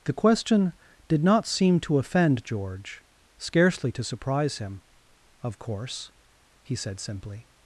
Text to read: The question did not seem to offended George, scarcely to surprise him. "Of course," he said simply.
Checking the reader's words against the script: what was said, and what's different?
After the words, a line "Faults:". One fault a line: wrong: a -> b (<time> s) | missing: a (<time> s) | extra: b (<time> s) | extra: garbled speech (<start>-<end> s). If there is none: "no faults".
The question did not seem to offend George, scarcely to surprise him. "Of course," he said simply.
Faults:
wrong: offended -> offend (2.0 s)